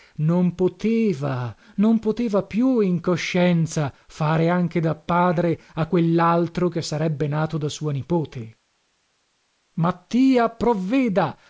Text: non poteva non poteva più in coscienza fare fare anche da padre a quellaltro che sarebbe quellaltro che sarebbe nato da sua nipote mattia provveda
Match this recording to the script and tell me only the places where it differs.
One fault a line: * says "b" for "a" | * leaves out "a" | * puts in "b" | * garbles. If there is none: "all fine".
* leaves out "fare"
* leaves out "quellaltro che sarebbe"